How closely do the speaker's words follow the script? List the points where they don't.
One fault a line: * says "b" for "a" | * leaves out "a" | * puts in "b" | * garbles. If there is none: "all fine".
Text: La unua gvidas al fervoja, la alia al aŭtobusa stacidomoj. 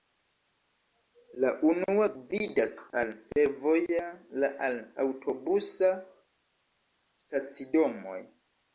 * leaves out "alia"